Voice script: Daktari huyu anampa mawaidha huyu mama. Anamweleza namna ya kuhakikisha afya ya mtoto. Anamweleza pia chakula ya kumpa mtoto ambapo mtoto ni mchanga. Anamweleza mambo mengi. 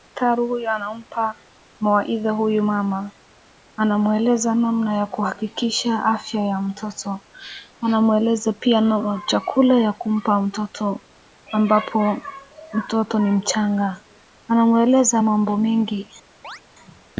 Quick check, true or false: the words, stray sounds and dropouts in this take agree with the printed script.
false